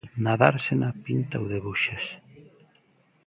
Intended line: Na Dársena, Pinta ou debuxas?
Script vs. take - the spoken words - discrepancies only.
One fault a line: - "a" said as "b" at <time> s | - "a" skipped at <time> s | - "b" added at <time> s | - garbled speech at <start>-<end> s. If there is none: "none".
none